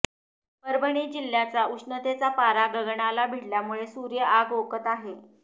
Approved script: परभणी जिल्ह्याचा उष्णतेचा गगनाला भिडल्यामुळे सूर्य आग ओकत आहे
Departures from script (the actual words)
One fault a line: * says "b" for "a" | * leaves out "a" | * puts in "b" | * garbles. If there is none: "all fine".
* puts in "पारा"